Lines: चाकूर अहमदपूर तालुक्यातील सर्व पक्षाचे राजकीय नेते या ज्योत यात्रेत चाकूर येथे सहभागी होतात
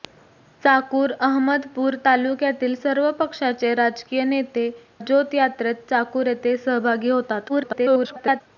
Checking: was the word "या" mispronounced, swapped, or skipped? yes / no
yes